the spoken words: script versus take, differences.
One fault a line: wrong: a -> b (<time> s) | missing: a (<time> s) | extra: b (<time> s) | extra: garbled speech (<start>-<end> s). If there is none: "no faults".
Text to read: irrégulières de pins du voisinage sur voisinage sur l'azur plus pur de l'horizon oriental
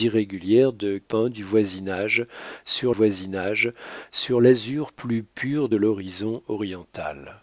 no faults